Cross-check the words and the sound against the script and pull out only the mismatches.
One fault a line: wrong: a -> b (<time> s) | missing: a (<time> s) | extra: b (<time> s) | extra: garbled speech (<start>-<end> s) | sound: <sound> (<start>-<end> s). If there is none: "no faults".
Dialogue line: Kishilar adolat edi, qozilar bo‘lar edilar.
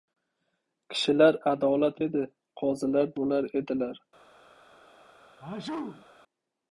sound: sneeze (5.4-6.1 s)